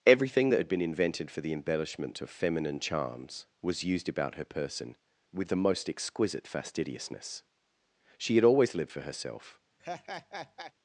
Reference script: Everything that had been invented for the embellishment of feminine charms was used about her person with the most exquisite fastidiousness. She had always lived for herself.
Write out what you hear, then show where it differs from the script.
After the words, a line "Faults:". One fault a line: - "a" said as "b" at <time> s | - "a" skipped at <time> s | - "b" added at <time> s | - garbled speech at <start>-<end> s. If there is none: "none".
Everything that had been invented for the embellishment of feminine charms was used about her person with the most exquisite fastidiousness. She had always lived for herself.
Faults:
none